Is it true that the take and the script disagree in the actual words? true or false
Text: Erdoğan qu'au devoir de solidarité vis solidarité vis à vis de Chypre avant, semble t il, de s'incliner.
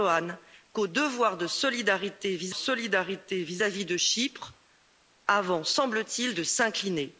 false